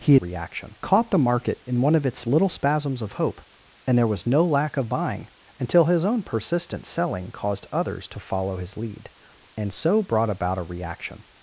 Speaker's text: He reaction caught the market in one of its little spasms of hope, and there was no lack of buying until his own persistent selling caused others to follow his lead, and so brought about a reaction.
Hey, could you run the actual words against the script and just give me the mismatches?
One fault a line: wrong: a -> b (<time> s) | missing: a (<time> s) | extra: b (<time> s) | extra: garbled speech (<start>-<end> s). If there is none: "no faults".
no faults